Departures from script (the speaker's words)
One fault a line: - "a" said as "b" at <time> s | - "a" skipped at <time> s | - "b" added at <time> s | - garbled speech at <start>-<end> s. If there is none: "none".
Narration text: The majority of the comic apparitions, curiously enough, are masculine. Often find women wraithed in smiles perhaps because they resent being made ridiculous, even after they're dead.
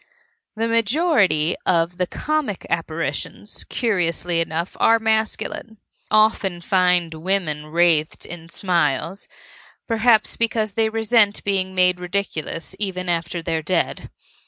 none